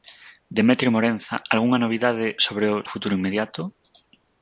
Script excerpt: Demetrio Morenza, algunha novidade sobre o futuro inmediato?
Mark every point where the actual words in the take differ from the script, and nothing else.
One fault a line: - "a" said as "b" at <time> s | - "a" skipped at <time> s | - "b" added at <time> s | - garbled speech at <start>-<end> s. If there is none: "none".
none